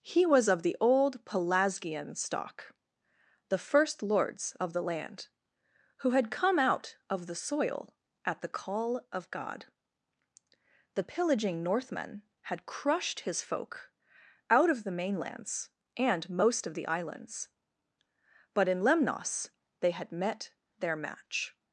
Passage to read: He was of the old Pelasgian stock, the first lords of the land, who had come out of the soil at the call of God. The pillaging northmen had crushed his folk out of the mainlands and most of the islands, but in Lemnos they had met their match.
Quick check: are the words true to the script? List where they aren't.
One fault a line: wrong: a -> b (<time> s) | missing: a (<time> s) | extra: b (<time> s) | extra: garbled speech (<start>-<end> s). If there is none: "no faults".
no faults